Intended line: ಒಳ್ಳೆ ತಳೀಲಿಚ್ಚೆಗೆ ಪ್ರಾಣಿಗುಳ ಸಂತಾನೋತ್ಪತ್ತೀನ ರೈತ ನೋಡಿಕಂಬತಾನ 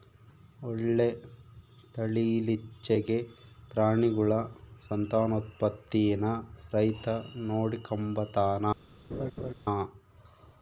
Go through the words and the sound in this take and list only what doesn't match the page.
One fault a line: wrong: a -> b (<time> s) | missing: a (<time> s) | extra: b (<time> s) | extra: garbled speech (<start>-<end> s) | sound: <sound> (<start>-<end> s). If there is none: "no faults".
sound: laugh (9.1-9.5 s)